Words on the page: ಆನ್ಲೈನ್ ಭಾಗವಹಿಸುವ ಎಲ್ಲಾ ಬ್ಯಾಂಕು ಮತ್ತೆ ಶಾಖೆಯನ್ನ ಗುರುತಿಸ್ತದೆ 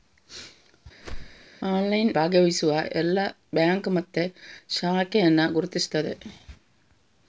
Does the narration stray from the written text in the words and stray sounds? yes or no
yes